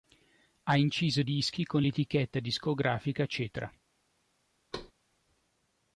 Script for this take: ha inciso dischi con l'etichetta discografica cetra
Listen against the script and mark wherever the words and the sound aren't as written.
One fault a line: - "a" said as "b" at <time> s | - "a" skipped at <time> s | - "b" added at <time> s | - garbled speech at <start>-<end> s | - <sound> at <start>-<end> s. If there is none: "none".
- thud at 4.7-4.9 s